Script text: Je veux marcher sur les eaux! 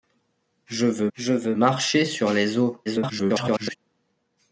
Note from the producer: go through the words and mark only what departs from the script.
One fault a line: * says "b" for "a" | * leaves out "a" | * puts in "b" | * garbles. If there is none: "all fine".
* puts in "je veux"
* garbles